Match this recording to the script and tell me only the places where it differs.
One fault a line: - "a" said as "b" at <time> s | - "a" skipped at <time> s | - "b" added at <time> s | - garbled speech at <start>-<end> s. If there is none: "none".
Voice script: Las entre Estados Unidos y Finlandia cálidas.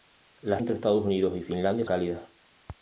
none